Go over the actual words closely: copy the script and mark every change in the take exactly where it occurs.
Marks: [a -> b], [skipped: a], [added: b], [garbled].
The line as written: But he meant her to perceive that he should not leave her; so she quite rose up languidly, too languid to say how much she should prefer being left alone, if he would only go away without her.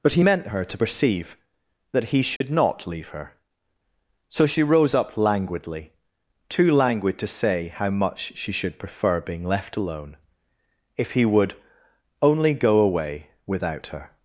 But he meant her to perceive that he should not leave her; so she [skipped: quite] rose up languidly, too languid to say how much she should prefer being left alone, if he would only go away without her.